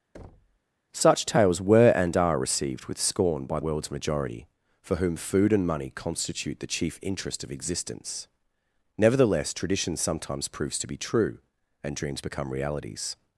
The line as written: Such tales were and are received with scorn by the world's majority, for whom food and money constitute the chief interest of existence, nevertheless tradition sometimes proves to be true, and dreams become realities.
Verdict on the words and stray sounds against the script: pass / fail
fail